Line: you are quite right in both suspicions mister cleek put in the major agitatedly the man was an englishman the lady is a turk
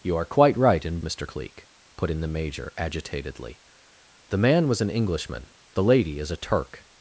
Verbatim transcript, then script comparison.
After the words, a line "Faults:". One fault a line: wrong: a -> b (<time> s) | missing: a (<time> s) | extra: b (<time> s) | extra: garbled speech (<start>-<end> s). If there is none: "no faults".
you are quite right in mister cleek put in the major agitatedly the man was an englishman the lady is a turk
Faults:
missing: both suspicions (1.0 s)